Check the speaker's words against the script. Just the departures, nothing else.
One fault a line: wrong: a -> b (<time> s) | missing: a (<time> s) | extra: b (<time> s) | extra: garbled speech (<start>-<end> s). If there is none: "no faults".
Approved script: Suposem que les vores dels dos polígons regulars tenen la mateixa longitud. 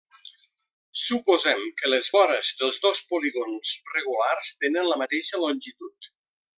no faults